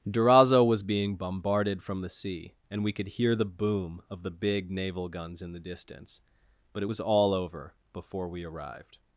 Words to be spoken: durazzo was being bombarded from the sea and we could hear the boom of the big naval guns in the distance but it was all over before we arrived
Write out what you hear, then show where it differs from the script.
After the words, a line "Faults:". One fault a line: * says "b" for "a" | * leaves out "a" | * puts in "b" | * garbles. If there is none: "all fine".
durazzo was being bombarded from the sea and we could hear the boom of the big naval guns in the distance but it was all over before we arrived
Faults:
all fine